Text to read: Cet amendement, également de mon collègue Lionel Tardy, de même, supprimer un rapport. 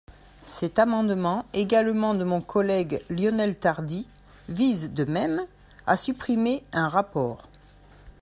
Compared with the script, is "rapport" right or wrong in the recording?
right